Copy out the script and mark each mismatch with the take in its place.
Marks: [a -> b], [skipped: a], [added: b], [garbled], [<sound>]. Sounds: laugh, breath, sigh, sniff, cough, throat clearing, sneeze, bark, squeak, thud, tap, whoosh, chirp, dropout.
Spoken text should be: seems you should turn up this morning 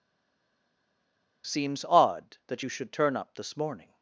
seems [added: odd that] you should turn up this morning